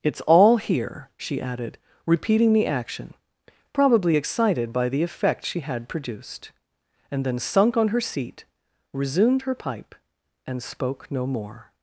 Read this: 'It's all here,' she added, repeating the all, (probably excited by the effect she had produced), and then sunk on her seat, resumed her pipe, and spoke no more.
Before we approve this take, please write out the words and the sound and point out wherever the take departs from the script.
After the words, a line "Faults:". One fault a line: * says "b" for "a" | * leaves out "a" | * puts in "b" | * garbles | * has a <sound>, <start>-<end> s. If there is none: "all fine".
'It's all here,' she added, repeating the action, (probably excited by the effect she had produced), and then sunk on her seat, resumed her pipe, and spoke no more.
Faults:
* says "action" for "all"